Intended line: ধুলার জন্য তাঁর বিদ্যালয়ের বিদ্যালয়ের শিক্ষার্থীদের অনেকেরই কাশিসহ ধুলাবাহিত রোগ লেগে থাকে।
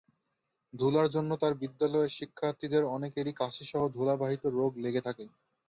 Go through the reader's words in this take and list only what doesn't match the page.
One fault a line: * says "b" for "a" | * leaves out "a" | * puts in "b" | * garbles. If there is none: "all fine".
* leaves out "বিদ্যালয়ের"